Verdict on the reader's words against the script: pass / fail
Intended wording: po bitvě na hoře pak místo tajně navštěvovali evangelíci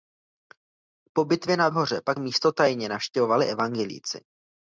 pass